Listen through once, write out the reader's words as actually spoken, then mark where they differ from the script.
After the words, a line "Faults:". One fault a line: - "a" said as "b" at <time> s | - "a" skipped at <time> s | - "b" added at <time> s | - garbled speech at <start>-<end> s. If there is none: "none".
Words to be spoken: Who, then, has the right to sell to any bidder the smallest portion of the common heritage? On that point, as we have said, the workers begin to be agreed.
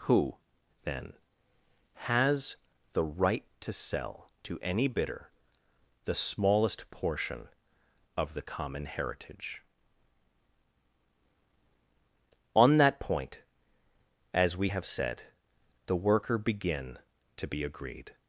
Who, then, has the right to sell to any bidder the smallest portion of the common heritage? On that point, as we have said, the worker begin to be agreed.
Faults:
- "workers" said as "worker" at 16.0 s